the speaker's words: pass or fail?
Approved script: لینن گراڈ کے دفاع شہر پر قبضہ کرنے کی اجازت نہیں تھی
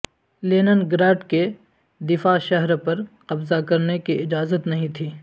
pass